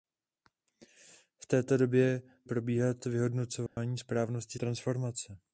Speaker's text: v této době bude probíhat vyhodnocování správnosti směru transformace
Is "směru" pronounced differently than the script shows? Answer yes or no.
yes